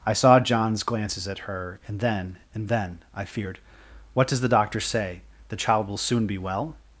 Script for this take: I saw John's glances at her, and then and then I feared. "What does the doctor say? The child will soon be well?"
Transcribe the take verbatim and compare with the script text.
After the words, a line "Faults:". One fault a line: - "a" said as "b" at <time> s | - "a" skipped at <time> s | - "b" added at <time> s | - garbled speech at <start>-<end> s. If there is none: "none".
I saw John's glances at her, and then and then I feared. "What does the doctor say? The child will soon be well?"
Faults:
none